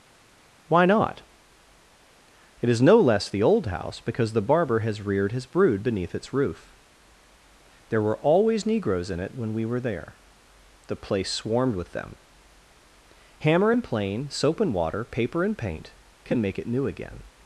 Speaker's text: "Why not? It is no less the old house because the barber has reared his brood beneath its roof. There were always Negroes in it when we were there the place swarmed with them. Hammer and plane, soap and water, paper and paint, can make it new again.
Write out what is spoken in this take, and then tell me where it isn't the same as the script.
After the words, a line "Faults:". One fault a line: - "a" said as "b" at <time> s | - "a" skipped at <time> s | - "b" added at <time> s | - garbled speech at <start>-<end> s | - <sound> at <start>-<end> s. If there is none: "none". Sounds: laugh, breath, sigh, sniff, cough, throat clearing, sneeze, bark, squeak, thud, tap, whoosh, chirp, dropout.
"Why not? It is no less the old house because the barber has reared his brood beneath its roof. There were always Negroes in it when we were there the place swarmed with them. Hammer and plane, soap and water, paper and paint, can make it new again.
Faults:
none